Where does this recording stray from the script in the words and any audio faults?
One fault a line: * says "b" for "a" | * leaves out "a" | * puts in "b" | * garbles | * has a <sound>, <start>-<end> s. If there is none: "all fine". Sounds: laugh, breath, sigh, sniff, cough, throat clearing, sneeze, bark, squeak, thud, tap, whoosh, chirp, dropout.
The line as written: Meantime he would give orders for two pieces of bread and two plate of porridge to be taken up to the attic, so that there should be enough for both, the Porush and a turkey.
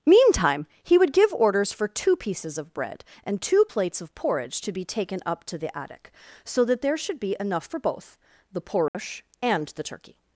* says "plates" for "plate"
* has a dropout, 8.9-8.9 s
* says "the" for "a"